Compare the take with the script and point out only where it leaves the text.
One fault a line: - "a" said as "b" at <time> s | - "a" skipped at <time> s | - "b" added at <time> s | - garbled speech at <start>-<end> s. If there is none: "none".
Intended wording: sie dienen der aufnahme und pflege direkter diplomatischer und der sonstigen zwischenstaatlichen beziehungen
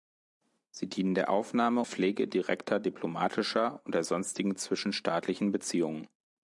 - "und" skipped at 1.8 s